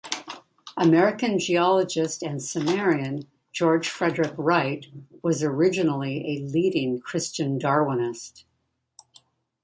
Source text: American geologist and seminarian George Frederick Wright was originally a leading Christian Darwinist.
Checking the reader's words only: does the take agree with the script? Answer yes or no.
yes